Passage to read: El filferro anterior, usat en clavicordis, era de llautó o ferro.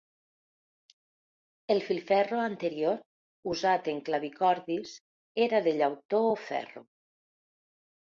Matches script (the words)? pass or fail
pass